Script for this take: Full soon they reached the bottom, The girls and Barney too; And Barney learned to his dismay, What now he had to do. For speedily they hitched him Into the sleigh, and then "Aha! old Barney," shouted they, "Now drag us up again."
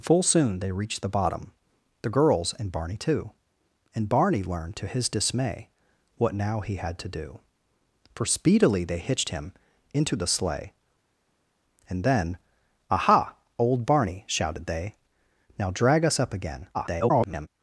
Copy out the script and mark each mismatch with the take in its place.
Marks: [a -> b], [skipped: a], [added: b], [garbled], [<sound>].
Full soon they reached the bottom, The girls and Barney too; And Barney learned to his dismay, What now he had to do. For speedily they hitched him Into the sleigh, and then "Aha! old Barney," shouted they, "Now drag us up again." [garbled]